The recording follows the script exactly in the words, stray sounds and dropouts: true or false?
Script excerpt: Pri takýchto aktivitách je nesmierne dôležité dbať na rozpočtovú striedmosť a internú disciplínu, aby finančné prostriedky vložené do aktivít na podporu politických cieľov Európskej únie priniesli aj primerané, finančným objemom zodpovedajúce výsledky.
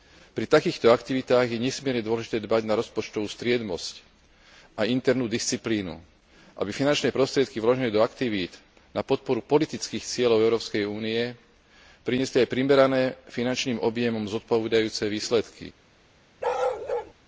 false